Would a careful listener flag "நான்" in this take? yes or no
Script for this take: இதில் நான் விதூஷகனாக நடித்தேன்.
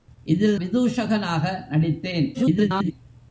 yes